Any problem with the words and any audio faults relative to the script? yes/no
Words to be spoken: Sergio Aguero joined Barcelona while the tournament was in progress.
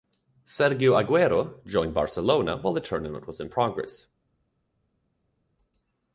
no